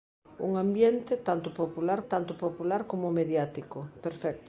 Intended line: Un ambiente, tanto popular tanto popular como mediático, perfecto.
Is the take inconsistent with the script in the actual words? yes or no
no